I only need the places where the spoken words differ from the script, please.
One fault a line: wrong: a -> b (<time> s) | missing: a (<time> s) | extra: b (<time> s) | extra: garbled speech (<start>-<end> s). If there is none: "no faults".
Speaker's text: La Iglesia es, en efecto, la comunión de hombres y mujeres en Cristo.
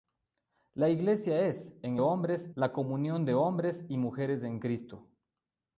wrong: efecto -> hombres (2.0 s)